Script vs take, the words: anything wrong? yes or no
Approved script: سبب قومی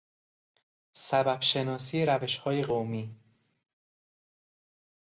yes